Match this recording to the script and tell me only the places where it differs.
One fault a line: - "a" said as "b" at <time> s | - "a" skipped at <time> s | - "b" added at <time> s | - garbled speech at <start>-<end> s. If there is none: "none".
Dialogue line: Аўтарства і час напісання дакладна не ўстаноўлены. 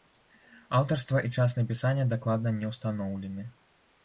none